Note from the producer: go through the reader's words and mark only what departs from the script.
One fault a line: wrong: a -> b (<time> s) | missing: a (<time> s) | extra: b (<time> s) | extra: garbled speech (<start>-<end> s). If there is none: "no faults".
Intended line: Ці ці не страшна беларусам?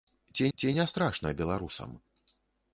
no faults